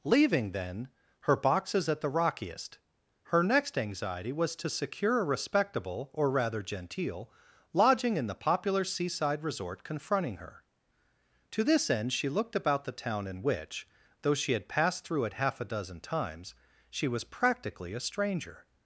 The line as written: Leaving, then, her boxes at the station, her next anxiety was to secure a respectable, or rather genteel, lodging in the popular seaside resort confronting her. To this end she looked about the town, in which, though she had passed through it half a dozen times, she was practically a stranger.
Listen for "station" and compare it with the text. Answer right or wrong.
wrong